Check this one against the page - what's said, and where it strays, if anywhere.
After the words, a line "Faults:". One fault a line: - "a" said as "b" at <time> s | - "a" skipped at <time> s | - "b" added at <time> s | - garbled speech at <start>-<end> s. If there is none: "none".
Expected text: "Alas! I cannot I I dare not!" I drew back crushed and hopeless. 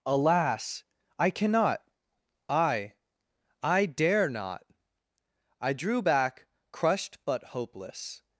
"Alas! I cannot I I dare not!" I drew back crushed but hopeless.
Faults:
- "and" said as "but" at 7.3 s